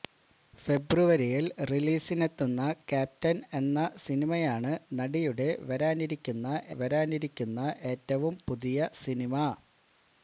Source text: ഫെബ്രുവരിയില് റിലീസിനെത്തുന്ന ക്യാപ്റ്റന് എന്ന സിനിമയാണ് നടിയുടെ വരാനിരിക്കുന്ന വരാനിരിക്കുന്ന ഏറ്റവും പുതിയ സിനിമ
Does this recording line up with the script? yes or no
yes